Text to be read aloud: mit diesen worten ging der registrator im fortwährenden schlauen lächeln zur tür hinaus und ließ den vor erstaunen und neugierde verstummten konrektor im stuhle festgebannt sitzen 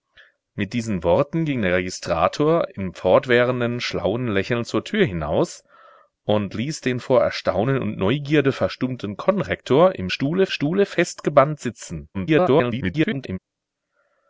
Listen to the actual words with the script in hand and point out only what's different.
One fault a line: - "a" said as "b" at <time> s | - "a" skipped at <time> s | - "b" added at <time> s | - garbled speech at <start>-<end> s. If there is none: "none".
- "stuhle" added at 10.5 s
- garbled speech at 12.1-13.4 s